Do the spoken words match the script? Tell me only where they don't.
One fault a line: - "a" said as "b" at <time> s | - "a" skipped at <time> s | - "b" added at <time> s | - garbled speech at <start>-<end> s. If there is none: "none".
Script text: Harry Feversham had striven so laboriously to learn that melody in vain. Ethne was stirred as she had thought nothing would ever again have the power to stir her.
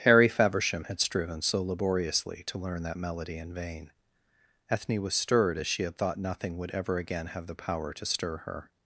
none